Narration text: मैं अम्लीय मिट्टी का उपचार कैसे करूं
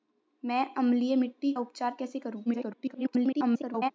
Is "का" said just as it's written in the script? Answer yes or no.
no